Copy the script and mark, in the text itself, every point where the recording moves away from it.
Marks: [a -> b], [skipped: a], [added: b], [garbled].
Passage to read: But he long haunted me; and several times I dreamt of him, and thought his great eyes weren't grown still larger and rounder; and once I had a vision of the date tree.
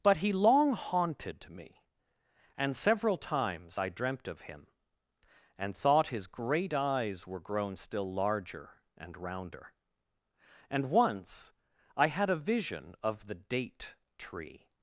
But he long haunted me; and several times I dreamt of him, and thought his great eyes [weren't -> were] grown still larger and rounder; and once I had a vision of the date tree.